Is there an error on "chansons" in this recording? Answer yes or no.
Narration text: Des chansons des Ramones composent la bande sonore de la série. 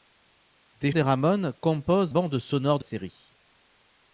yes